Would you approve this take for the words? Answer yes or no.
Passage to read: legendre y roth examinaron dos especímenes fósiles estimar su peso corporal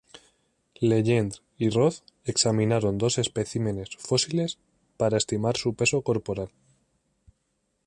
no